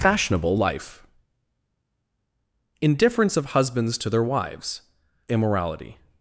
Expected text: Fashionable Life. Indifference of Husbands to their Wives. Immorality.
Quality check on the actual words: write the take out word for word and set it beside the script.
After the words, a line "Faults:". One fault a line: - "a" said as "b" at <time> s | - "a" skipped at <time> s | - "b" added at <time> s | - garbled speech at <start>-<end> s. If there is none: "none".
Fashionable Life. Indifference of Husbands to their Wives. Immorality.
Faults:
none